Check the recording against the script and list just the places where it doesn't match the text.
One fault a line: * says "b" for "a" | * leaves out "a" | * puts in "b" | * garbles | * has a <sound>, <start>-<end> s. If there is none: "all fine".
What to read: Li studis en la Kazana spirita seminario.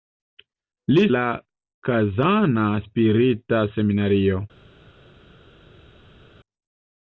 * leaves out "studis en"